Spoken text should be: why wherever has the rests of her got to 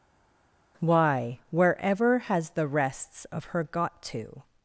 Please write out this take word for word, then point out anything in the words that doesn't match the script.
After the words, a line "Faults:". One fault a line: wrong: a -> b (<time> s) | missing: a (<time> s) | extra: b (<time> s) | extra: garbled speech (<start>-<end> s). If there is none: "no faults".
why wherever has the rests of her got to
Faults:
no faults